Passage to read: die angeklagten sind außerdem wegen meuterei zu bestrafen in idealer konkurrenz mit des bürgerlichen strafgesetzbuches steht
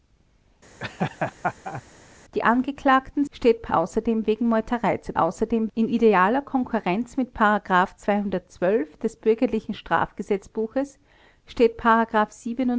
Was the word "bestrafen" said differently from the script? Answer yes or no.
yes